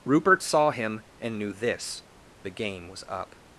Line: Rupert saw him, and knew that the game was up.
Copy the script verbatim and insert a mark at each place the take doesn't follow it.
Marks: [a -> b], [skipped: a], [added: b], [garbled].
Rupert saw him, and knew [that -> this] the game was up.